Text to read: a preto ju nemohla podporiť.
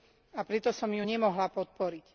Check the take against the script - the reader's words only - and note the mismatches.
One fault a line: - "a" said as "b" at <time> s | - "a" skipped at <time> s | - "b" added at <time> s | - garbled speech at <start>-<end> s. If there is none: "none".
- "som" added at 0.7 s